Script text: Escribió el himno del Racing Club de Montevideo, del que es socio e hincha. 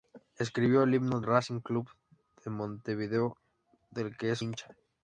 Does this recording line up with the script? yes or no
no